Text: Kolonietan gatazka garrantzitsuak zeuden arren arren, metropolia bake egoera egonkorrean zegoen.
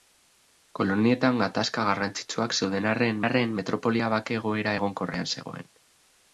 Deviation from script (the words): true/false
false